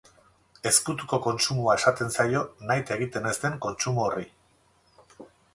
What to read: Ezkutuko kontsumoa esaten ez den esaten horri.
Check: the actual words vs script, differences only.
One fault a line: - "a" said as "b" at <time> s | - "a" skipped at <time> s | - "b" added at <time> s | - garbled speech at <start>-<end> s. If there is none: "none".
- "zaio nahita egiten" added at 2.1 s
- "esaten" said as "kontsumo" at 3.7 s